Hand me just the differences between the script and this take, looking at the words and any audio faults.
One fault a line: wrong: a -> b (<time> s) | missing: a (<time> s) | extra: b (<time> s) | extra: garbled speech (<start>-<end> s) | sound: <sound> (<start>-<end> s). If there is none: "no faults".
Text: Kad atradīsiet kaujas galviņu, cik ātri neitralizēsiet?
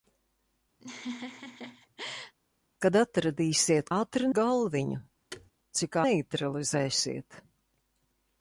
sound: laugh (0.8-2.3 s)
wrong: kaujas -> ātri (3.9 s)
sound: thud (5.3-5.5 s)
missing: ātri (6.0 s)